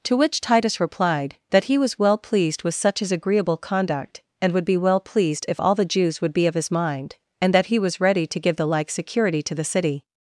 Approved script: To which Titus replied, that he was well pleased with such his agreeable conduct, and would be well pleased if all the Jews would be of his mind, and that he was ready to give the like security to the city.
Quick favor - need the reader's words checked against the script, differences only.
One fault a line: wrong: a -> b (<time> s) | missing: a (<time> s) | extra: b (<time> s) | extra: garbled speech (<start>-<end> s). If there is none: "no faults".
no faults